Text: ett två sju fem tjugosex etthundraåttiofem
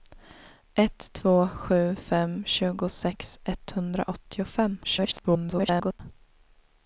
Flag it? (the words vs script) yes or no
yes